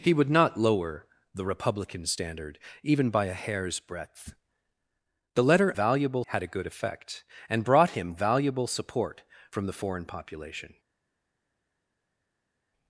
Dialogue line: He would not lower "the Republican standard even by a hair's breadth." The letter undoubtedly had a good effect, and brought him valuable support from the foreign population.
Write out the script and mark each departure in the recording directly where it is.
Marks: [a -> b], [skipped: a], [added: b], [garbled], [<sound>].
He would not lower "the Republican standard even by a hair's breadth." The letter [undoubtedly -> valuable] had a good effect, and brought him valuable support from the foreign population.